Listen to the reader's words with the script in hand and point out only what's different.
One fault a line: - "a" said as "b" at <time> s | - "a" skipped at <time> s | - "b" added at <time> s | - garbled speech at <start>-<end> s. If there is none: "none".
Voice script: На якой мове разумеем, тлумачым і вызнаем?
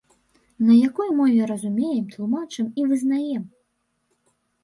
none